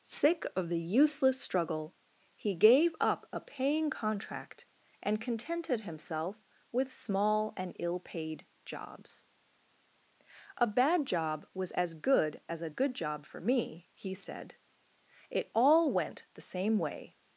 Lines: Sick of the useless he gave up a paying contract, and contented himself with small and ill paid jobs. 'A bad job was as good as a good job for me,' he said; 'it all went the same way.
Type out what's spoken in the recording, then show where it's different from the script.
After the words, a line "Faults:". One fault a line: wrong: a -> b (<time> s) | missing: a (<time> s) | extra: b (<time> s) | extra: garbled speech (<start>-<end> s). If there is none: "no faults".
Sick of the useless struggle, he gave up a paying contract, and contented himself with small and ill paid jobs. 'A bad job was as good as a good job for me,' he said; 'it all went the same way.
Faults:
extra: struggle (1.4 s)